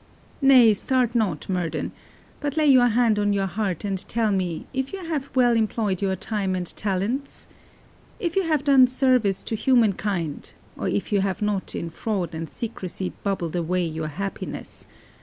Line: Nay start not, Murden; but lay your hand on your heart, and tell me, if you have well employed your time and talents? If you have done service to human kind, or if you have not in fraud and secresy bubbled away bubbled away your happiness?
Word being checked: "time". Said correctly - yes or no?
yes